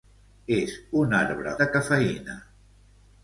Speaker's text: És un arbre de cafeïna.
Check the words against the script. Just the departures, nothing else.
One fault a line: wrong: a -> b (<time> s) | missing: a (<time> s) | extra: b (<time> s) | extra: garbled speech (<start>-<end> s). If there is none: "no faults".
no faults